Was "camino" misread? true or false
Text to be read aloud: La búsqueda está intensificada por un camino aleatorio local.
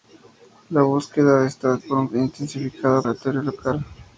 true